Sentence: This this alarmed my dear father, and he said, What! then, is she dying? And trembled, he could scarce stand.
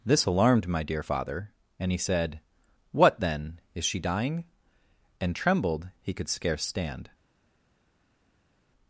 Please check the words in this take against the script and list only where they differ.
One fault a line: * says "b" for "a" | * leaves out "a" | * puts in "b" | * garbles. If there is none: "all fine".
* leaves out "this"